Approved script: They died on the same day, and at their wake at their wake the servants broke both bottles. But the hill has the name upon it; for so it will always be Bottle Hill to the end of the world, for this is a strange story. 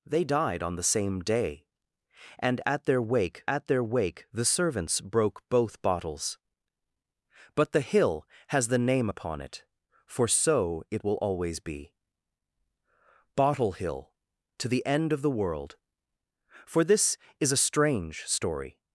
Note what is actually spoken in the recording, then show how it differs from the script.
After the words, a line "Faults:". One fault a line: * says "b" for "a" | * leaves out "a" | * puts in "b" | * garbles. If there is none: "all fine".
They died on the same day, and at their wake at their wake the servants broke both bottles. But the hill has the name upon it; for so it will always be Bottle Hill to the end of the world, for this is a strange story.
Faults:
all fine